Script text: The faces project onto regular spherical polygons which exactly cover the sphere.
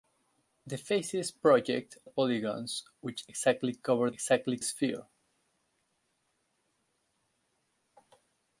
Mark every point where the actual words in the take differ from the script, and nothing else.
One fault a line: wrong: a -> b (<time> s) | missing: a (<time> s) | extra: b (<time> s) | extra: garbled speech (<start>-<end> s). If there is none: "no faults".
missing: onto regular spherical (2.0 s)
wrong: the -> exactly (4.1 s)